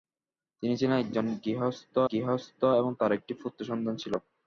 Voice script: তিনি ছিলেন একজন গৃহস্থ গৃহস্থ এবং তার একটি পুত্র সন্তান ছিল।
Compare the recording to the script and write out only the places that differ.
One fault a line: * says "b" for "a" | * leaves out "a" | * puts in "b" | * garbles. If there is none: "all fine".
all fine